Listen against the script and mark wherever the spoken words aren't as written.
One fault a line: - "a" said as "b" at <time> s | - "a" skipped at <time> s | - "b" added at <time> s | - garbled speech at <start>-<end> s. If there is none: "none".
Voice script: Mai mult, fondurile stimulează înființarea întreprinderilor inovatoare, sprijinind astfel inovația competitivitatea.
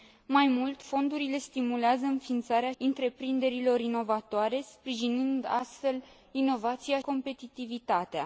none